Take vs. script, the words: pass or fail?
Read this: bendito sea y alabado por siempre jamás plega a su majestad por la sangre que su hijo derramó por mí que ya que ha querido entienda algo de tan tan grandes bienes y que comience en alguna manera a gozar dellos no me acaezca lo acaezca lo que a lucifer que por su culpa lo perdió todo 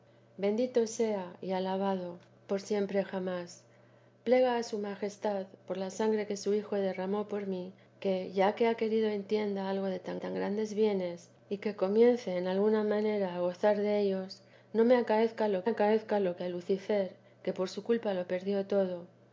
pass